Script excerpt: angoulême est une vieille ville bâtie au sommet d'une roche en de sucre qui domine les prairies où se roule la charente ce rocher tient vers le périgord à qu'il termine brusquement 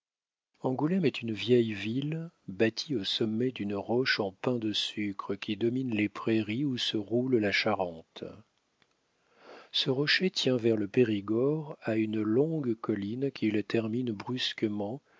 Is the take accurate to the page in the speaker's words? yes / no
no